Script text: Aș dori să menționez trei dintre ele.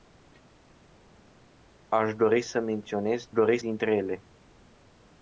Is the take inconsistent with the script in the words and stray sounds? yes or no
yes